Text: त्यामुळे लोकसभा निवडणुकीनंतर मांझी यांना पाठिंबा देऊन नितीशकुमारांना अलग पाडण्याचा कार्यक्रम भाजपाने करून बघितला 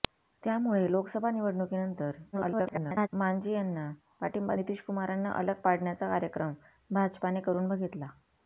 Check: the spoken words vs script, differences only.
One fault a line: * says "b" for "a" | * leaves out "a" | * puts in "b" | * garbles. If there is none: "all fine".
* garbles
* leaves out "देऊन"